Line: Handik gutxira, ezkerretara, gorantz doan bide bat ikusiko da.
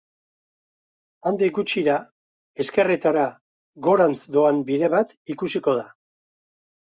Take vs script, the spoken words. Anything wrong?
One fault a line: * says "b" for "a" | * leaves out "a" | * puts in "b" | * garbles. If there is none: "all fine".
all fine